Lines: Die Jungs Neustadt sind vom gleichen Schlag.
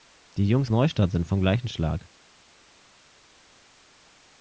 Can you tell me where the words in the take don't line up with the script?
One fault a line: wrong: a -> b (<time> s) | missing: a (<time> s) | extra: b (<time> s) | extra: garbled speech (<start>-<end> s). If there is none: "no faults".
no faults